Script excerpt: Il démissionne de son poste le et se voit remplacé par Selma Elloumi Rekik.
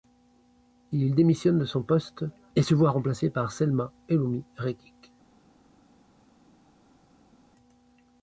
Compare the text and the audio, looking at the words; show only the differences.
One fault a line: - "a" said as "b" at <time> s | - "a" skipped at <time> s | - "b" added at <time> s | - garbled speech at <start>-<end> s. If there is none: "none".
- "le" skipped at 2.2 s